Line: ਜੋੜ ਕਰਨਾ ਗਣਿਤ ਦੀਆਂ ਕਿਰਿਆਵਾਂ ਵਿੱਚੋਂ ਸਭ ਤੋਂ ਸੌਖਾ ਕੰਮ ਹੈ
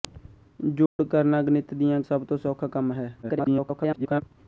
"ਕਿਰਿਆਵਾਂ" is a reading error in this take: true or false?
true